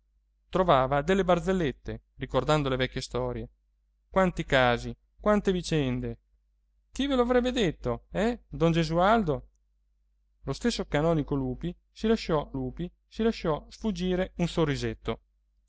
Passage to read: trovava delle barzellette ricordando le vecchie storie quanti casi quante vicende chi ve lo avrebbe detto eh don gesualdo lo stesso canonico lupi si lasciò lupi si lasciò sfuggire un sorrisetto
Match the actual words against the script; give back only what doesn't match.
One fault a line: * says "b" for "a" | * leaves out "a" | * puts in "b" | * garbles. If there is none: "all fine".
all fine